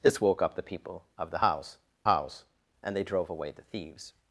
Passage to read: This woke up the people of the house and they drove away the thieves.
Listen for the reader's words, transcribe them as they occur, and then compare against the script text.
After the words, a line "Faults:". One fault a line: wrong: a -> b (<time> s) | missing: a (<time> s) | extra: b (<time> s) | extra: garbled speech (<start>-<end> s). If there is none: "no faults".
This woke up the people of the house house and they drove away the thieves.
Faults:
extra: house (2.1 s)